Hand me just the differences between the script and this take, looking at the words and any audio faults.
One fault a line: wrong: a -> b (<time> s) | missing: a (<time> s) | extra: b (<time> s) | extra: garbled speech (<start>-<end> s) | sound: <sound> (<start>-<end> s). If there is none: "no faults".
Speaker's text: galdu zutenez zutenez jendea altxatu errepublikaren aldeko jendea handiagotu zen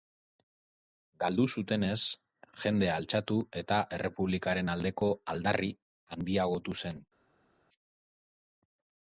missing: zutenez (2.0 s)
extra: eta (3.6 s)
wrong: jendea -> aldarri (5.3 s)